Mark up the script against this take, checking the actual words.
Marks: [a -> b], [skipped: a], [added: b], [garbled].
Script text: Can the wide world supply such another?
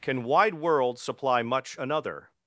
Can [skipped: the] wide world supply [such -> much] another?